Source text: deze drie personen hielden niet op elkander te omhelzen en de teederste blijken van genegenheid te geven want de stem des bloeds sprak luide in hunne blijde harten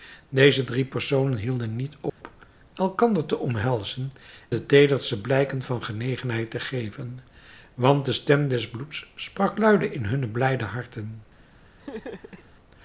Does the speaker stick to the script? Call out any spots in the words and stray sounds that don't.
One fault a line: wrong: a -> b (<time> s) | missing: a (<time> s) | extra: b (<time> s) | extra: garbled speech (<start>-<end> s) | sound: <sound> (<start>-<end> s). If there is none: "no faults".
sound: dropout (2.1-2.2 s)
missing: en (4.1 s)
sound: laugh (11.8-12.5 s)